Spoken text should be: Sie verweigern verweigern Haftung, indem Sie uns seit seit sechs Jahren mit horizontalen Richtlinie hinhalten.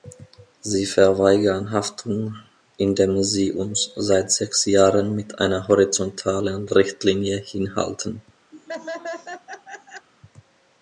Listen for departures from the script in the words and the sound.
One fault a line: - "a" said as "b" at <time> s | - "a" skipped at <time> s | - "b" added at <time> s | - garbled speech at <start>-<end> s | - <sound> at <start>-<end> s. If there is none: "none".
- "verweigern" skipped at 1.7 s
- "seit" skipped at 4.3 s
- "einer" added at 5.4 s
- laugh at 8.5-10.1 s